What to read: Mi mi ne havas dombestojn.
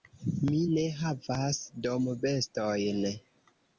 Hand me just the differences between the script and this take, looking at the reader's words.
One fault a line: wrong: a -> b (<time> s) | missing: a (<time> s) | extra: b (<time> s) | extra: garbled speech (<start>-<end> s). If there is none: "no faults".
missing: mi (0.6 s)